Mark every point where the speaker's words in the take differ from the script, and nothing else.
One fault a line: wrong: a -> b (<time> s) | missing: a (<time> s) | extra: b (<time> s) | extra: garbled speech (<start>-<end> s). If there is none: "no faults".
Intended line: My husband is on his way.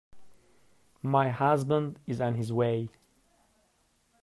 no faults